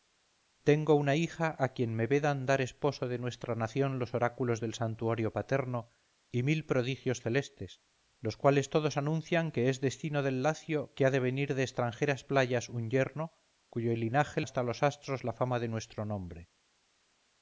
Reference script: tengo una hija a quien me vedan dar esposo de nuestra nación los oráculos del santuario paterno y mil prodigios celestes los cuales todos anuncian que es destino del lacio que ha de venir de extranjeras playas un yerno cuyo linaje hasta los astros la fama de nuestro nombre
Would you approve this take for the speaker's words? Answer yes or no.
yes